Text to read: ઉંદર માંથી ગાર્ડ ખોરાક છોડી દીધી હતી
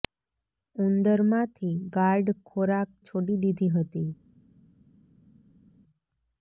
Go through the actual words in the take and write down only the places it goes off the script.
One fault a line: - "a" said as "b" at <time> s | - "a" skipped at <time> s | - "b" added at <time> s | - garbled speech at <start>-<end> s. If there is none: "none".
none